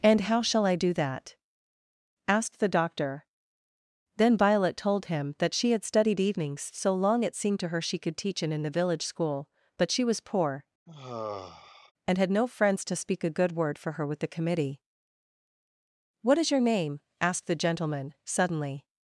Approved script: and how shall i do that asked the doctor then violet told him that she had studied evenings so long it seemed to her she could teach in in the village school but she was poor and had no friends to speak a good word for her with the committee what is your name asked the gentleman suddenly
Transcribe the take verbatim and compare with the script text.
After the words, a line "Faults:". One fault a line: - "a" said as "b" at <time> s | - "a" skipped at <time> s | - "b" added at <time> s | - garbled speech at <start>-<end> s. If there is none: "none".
and how shall i do that asked the doctor then violet told him that she had studied evenings so long it seemed to her she could teach in in the village school but she was poor and had no friends to speak a good word for her with the committee what is your name asked the gentleman suddenly
Faults:
none